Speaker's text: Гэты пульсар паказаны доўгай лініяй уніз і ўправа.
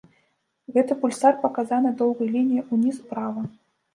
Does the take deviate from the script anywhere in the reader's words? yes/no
yes